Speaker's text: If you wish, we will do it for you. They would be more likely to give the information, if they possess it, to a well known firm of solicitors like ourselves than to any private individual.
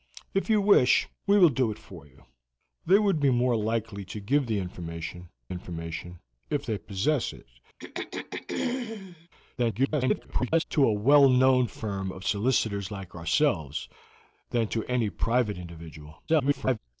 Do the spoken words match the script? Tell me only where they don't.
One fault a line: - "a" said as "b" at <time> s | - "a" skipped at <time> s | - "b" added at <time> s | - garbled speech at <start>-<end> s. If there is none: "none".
- "information" added at 5.5 s
- garbled speech at 9.6-10.6 s
- garbled speech at 16.3-16.8 s